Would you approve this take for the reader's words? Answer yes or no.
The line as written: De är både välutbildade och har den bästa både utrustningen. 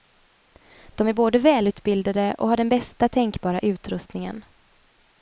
no